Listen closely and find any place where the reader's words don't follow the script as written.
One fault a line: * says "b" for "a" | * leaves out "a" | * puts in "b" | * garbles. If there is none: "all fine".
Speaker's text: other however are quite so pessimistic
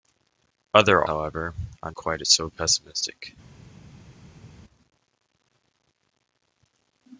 all fine